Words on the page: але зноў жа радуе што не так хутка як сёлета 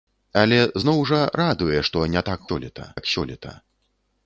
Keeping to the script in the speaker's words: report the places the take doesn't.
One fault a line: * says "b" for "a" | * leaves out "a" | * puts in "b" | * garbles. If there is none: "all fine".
* says "сёлета" for "хутка"